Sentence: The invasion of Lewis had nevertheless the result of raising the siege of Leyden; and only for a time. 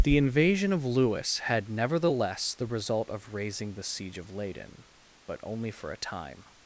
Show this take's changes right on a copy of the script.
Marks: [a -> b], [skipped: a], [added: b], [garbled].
The invasion of Lewis had nevertheless the result of raising the siege of Leyden; [and -> but] only for a time.